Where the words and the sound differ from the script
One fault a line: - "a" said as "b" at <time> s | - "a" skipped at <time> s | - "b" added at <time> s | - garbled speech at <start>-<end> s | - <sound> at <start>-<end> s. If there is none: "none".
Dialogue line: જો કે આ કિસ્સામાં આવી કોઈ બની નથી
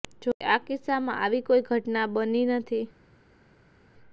- "ઘટના" added at 1.7 s